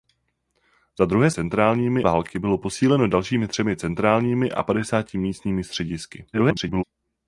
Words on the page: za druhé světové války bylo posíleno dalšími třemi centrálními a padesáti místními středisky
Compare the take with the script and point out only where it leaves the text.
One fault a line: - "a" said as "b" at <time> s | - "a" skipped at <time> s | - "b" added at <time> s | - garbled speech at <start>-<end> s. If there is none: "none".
- "světové" said as "centrálními" at 1.3 s
- garbled speech at 6.3-6.8 s